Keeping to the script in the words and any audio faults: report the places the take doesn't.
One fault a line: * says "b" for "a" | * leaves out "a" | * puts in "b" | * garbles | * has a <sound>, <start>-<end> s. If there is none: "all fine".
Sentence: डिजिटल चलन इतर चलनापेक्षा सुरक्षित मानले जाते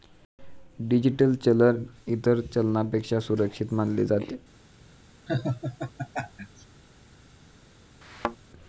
* has a laugh, 5.3-6.7 s
* has a thud, 8.0-8.4 s